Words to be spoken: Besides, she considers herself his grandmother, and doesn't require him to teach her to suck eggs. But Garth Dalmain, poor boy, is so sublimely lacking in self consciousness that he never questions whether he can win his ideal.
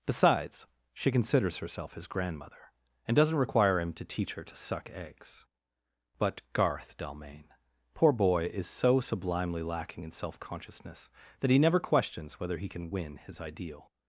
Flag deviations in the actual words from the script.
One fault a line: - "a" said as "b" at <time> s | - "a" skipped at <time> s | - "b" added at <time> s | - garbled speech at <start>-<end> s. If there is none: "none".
none